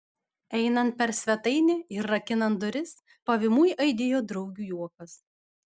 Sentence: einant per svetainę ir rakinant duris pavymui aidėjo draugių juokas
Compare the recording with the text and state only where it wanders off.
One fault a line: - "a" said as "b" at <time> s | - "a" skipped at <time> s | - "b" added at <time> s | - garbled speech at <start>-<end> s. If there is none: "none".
none